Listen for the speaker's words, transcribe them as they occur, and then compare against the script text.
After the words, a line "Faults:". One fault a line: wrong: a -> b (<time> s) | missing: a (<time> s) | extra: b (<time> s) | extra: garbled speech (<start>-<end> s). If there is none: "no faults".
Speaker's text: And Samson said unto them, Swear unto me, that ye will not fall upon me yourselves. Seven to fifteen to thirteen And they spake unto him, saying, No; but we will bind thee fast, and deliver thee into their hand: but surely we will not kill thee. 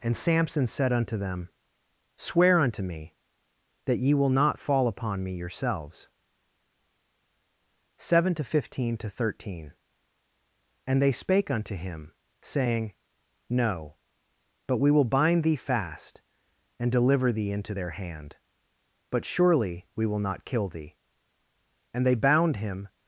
And Samson said unto them, Swear unto me, that ye will not fall upon me yourselves. Seven to fifteen to thirteen And they spake unto him, saying, No; but we will bind thee fast, and deliver thee into their hand: but surely we will not kill thee. And they bound him
Faults:
extra: And they bound him (21.9 s)